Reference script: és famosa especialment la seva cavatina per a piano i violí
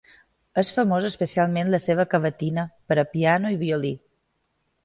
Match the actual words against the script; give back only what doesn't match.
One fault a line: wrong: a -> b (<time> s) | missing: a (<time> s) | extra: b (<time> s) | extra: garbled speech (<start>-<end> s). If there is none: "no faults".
no faults